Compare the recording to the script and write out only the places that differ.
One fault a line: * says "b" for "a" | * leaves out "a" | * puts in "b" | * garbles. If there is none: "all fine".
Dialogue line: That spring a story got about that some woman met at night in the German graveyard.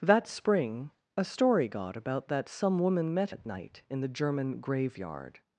all fine